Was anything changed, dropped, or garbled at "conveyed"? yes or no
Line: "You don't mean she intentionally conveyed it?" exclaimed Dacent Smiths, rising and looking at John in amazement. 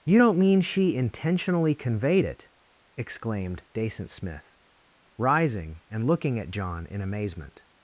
no